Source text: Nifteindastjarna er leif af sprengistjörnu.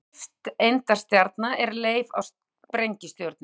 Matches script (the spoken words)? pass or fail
pass